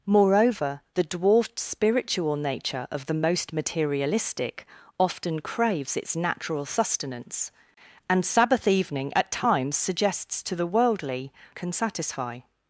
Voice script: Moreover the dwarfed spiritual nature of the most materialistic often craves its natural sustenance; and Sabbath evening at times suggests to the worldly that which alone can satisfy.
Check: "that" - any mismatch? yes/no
yes